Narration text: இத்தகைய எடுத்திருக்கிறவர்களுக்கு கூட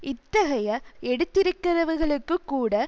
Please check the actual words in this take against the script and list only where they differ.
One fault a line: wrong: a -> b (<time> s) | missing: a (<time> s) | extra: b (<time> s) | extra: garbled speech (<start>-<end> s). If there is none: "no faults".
no faults